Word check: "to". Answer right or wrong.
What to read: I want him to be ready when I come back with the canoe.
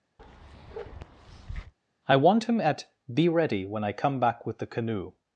wrong